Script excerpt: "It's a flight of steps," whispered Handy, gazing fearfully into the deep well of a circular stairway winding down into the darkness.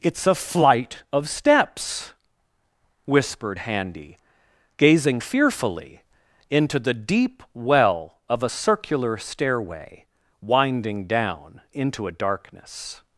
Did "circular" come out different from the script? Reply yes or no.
no